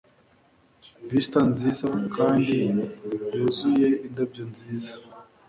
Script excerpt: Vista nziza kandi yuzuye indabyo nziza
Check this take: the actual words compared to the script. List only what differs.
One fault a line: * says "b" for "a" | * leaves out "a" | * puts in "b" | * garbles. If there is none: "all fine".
all fine